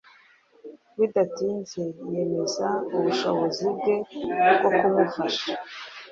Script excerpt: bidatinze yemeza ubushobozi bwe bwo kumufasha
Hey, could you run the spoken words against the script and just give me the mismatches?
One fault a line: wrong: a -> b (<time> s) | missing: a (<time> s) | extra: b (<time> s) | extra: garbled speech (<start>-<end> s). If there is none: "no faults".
no faults